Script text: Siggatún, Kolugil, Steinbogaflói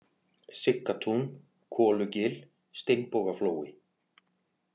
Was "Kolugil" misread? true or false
false